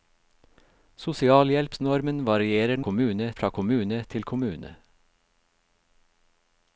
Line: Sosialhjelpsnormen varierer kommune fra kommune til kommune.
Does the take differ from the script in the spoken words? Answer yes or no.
no